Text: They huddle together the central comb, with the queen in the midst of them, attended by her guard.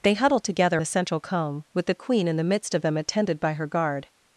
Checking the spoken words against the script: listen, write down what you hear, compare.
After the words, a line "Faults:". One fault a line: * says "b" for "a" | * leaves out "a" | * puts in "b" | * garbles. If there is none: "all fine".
They huddle together the central comb, with the queen in the midst of them, attended by her guard.
Faults:
all fine